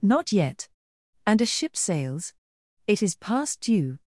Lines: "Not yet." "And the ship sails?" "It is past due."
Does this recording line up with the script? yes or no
no